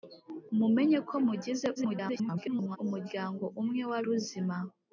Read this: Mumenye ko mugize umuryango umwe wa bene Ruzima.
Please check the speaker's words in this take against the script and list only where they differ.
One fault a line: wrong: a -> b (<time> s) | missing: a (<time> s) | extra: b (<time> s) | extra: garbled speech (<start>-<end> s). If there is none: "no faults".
extra: garbled speech (1.7-2.8 s)
missing: bene (4.0 s)